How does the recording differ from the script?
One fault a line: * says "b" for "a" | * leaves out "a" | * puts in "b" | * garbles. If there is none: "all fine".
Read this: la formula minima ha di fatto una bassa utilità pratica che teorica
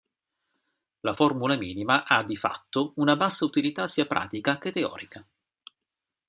* puts in "sia"